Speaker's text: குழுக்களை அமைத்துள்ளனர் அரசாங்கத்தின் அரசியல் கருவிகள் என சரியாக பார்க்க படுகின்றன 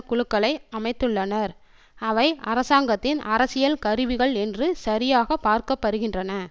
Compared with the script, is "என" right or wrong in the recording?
wrong